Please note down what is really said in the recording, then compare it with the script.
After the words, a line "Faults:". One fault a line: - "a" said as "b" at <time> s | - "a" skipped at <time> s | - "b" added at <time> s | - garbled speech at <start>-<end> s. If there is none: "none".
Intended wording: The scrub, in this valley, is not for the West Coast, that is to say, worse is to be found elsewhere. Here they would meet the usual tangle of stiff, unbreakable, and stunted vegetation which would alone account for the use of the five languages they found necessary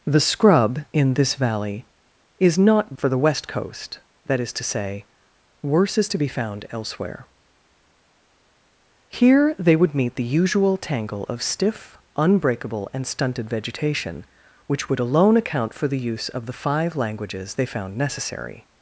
The scrub, in this valley, is not for the West Coast, that is to say, worse is to be found elsewhere. Here they would meet the usual tangle of stiff, unbreakable, and stunted vegetation which would alone account for the use of the five languages they found necessary
Faults:
none